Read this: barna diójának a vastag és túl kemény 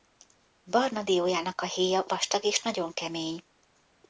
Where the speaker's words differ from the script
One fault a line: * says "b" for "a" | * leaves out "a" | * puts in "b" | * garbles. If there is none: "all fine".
* puts in "héja"
* says "nagyon" for "túl"